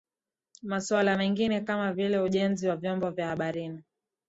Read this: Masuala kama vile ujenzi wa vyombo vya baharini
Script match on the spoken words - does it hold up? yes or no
no